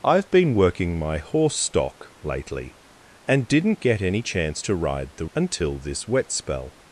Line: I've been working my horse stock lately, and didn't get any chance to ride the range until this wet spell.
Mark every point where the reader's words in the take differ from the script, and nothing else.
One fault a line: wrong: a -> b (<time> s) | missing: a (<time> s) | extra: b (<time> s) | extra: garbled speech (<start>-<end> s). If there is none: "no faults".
missing: range (5.3 s)